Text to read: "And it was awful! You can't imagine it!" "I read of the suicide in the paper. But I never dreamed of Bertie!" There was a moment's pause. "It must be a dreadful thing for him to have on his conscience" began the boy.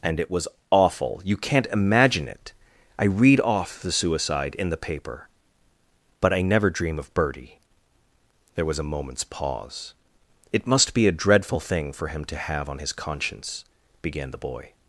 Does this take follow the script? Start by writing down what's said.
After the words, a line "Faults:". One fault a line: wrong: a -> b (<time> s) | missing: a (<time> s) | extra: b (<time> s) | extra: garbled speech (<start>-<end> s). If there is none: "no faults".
"And it was awful! You can't imagine it!" "I read off the suicide in the paper. But I never dream of Bertie!" There was a moment's pause. "It must be a dreadful thing for him to have on his conscience" began the boy.
Faults:
wrong: of -> off (3.4 s)
wrong: dreamed -> dream (6.7 s)